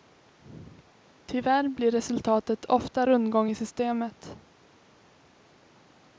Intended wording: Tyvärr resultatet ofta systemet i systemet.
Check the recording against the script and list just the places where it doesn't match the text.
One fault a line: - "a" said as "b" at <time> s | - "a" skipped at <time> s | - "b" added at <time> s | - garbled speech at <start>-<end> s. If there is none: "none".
- "blir" added at 1.7 s
- "systemet" said as "rundgång" at 3.0 s